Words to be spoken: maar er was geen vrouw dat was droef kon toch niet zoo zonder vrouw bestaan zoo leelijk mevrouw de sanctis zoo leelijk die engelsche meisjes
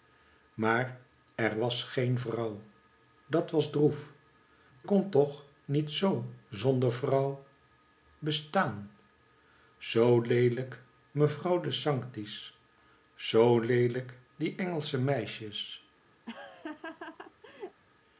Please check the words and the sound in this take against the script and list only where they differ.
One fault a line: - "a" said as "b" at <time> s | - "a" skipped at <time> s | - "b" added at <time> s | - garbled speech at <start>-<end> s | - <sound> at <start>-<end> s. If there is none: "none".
- laugh at 16.3-17.8 s